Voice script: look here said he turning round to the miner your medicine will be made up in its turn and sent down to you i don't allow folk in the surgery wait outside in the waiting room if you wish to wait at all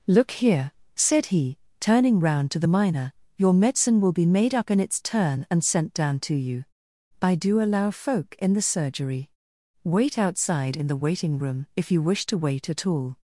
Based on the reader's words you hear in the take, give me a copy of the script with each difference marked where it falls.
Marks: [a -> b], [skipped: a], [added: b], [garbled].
look here said he turning round to the miner your medicine will be made up in its turn and sent down to you i [don't -> do] allow folk in the surgery wait outside in the waiting room if you wish to wait at all